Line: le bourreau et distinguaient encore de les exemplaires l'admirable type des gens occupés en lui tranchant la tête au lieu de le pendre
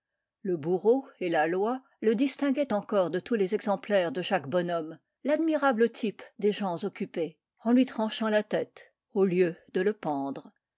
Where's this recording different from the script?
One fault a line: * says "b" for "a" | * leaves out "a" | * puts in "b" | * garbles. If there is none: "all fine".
* puts in "la loi le"
* puts in "tous"
* puts in "de jacques bonhomme"